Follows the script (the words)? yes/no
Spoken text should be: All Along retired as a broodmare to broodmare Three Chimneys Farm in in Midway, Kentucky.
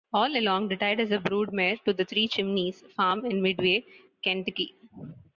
no